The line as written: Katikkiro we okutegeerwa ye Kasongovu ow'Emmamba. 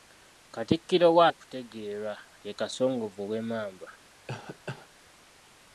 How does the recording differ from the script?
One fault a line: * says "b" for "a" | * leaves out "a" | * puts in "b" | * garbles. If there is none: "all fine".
all fine